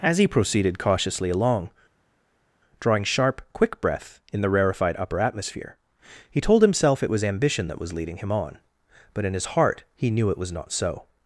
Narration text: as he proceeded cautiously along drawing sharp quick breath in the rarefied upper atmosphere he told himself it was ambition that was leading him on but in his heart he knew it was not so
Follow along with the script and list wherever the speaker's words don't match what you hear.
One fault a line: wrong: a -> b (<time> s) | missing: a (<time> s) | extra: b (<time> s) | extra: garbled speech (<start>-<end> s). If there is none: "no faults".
no faults